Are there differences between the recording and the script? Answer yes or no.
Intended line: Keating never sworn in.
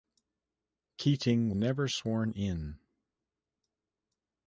no